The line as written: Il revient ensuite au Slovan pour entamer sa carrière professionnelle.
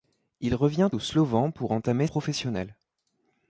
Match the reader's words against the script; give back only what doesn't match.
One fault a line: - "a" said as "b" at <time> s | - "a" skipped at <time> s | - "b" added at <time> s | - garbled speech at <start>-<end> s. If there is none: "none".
- "ensuite" skipped at 0.9 s
- "sa carrière" skipped at 2.1 s